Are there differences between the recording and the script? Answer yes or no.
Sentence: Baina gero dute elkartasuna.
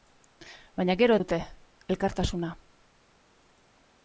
no